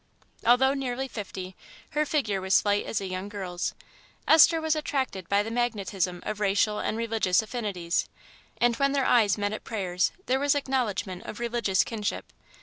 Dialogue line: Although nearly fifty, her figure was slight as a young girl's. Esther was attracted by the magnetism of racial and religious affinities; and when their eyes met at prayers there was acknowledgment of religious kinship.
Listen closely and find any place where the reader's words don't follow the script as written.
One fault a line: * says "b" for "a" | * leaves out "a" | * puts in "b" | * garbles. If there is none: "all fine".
all fine